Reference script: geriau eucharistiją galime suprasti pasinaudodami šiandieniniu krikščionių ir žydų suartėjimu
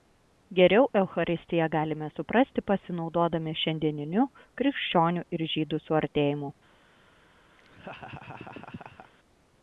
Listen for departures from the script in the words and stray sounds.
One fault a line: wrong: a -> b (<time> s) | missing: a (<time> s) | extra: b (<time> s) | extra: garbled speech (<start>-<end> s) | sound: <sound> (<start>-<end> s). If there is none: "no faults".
sound: laugh (7.6-9.1 s)